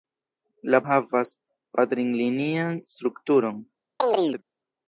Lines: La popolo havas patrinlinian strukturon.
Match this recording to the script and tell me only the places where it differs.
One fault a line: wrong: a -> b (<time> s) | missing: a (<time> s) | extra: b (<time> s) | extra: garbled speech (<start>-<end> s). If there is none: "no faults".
missing: popolo (0.8 s)